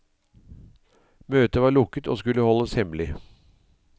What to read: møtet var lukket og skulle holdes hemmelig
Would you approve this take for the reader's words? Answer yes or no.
yes